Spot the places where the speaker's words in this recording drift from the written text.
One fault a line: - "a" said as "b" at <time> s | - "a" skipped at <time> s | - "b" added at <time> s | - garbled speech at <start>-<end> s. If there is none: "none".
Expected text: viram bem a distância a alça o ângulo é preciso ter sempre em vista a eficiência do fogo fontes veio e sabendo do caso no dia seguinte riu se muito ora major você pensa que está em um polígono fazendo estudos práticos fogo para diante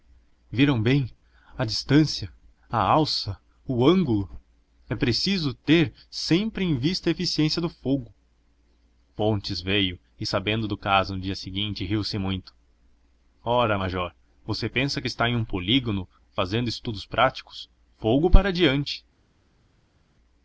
none